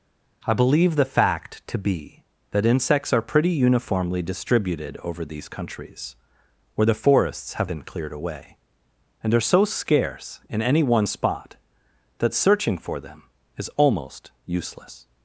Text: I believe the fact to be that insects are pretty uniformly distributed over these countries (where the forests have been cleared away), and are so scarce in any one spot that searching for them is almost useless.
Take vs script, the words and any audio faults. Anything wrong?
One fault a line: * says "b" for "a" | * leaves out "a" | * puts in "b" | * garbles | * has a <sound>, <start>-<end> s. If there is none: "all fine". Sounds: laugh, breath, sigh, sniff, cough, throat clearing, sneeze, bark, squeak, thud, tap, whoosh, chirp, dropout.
all fine